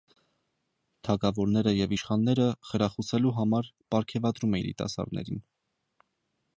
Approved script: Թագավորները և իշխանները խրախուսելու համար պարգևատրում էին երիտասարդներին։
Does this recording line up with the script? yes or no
no